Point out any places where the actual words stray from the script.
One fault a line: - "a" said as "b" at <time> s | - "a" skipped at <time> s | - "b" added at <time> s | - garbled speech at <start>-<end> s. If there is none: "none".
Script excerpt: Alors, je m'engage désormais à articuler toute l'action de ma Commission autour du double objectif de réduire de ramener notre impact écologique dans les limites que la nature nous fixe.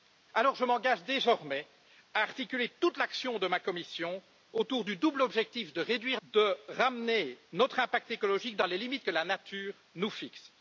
none